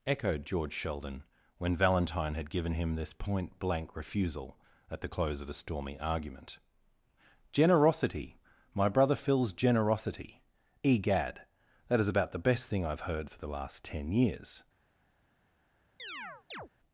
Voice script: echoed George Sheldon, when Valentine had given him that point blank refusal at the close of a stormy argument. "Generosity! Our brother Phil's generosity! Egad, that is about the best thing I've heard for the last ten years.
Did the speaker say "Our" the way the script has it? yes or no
no